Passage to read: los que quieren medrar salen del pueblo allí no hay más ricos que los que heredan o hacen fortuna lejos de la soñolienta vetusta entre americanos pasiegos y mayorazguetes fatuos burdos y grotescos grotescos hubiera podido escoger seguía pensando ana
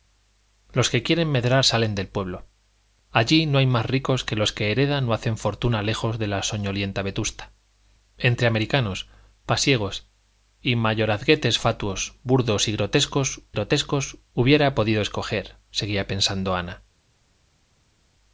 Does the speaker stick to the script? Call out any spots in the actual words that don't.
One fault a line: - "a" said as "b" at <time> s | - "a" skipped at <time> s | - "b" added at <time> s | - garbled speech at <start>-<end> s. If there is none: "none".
none